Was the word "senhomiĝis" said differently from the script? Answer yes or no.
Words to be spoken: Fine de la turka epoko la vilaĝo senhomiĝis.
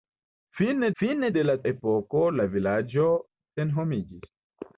no